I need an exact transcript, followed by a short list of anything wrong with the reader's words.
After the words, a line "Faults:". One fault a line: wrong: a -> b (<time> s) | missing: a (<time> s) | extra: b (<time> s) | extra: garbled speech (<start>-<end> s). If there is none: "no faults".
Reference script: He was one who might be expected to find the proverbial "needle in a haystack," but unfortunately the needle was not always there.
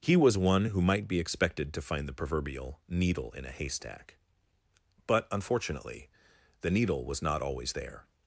He was one who might be expected to find the proverbial "needle in a haystack," but unfortunately the needle was not always there.
Faults:
no faults